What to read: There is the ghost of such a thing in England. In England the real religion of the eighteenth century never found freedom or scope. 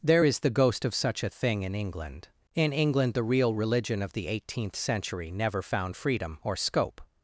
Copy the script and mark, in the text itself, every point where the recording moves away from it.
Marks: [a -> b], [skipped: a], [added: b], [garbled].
There is the ghost of such a thing in England. In England the real religion of the eighteenth century never found freedom or scope.